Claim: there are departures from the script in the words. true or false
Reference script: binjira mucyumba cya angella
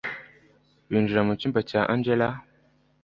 false